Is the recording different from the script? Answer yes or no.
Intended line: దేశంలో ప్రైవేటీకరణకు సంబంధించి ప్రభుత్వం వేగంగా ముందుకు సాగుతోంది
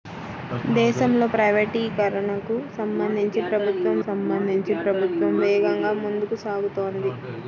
yes